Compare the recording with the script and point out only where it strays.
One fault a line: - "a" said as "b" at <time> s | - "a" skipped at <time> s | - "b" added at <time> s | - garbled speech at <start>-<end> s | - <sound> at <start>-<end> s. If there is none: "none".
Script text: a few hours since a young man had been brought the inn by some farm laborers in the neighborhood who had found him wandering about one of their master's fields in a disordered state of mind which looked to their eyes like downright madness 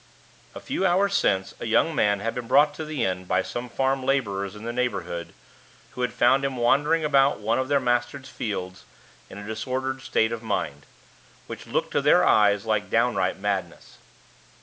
- "to" added at 2.7 s